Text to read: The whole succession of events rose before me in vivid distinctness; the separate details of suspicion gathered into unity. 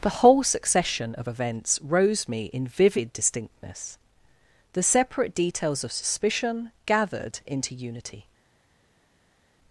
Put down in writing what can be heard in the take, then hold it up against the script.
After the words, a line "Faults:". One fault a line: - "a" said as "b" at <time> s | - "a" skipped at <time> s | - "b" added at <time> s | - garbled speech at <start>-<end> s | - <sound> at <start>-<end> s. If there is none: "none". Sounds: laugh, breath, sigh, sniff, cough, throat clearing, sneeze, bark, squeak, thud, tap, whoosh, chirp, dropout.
The whole succession of events rose me in vivid distinctness; the separate details of suspicion gathered into unity.
Faults:
- "before" skipped at 2.3 s